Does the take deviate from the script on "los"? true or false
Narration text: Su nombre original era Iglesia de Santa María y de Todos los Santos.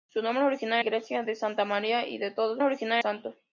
true